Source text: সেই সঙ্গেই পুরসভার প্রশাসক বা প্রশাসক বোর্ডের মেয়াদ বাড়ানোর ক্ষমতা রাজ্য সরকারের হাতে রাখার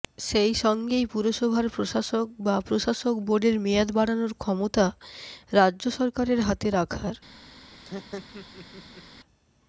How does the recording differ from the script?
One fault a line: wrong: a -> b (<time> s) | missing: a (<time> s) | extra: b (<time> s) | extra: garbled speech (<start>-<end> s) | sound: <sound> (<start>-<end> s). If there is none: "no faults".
sound: laugh (7.7-9.0 s)